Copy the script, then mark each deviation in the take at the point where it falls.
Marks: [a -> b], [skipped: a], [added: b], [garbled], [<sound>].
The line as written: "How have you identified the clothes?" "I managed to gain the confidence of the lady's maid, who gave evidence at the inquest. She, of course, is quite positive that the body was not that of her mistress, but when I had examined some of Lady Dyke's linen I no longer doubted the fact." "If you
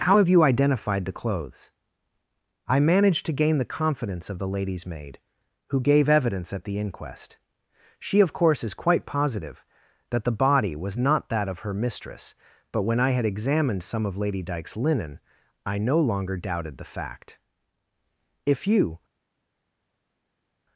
"How have you identified the clothes?" "I managed to gain the confidence of the lady's maid, who gave evidence at the inquest. She, of course, is quite positive that the body was not that of her mistress, but when I had examined some of Lady Dyke's linen I no longer doubted the fact." "If you